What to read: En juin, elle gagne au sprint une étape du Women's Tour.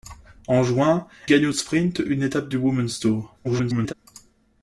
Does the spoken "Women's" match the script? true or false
true